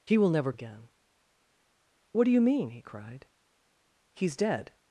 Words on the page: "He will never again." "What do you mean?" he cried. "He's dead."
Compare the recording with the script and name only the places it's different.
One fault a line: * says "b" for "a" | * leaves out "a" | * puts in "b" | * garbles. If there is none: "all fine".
all fine